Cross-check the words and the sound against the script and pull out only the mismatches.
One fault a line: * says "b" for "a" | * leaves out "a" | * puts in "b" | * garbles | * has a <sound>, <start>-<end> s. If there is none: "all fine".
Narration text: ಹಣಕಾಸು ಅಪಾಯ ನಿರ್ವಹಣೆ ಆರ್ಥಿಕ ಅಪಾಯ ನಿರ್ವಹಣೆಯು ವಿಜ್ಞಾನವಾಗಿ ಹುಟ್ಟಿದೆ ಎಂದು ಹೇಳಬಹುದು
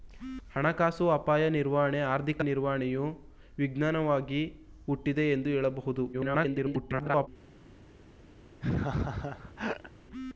* leaves out "ಅಪಾಯ"
* garbles
* has a laugh, 8.6-9.9 s